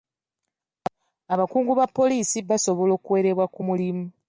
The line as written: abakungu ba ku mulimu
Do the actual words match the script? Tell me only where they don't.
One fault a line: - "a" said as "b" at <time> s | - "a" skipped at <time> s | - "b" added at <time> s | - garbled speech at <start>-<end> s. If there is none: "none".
- "poliisi basobola okuwerebwa" added at 1.9 s